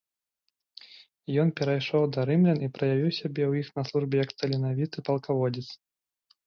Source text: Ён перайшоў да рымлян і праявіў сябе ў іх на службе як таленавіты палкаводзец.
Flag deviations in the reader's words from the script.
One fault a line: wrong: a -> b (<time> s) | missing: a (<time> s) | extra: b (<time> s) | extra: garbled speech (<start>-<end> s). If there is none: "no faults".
no faults